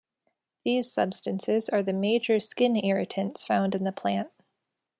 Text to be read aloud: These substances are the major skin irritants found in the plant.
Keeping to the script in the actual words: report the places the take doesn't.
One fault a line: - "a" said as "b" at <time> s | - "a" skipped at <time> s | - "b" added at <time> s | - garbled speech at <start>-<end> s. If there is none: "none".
none